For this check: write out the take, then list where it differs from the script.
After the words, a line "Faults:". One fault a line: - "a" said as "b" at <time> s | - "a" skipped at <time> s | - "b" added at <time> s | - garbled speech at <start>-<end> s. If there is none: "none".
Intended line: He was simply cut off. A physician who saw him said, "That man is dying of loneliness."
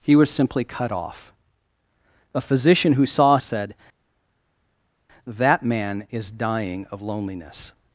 He was simply cut off. A physician who saw said, "That man is dying of loneliness."
Faults:
- "him" skipped at 3.4 s